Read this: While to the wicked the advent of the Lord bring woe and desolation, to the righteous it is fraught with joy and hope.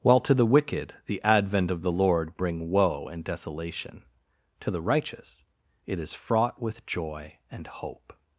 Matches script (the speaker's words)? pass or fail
pass